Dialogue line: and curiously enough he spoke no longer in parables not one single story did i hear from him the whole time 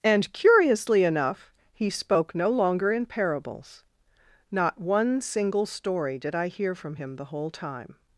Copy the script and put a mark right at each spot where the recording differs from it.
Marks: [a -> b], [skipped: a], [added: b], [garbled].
and curiously enough he spoke no longer in parables not one single story did i hear from him the whole time